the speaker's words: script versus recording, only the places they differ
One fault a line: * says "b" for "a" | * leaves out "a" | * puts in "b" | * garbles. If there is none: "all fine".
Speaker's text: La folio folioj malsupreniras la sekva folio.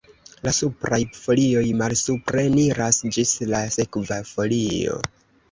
* says "supraj" for "folio"
* puts in "ĝis"